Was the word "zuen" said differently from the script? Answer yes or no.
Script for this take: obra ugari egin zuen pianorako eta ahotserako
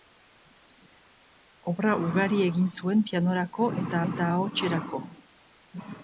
no